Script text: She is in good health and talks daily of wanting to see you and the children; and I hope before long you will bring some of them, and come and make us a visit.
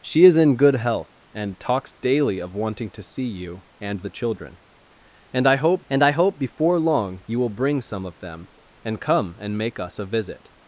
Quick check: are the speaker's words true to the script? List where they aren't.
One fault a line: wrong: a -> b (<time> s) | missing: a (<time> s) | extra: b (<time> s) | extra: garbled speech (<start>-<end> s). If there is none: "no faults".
extra: and I hope (5.9 s)